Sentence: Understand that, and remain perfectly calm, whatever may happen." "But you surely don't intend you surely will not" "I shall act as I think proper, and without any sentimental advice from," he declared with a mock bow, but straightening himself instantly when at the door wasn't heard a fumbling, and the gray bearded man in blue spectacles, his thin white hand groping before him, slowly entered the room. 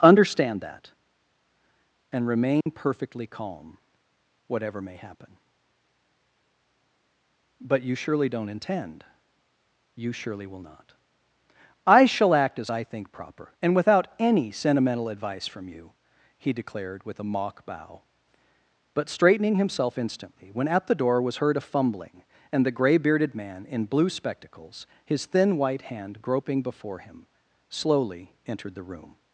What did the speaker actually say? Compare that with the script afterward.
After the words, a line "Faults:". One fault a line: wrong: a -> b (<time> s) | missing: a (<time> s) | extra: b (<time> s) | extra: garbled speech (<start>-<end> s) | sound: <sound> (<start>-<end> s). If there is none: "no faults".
Understand that, and remain perfectly calm, whatever may happen." "But you surely don't intend you surely will not" "I shall act as I think proper, and without any sentimental advice from you," he declared with a mock bow, but straightening himself instantly when at the door was heard a fumbling, and the gray bearded man in blue spectacles, his thin white hand groping before him, slowly entered the room.
Faults:
sound: dropout (2.6-2.7 s)
extra: you (15.7 s)
wrong: wasn't -> was (21.2 s)